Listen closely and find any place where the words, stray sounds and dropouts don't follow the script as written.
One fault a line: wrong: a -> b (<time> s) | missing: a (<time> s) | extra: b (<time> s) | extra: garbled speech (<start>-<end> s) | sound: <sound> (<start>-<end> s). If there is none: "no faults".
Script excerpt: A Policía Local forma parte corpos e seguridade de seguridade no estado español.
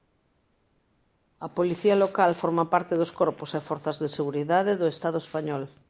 extra: dos (3.0 s)
wrong: seguridade -> forzas (3.6 s)
wrong: no -> do (4.8 s)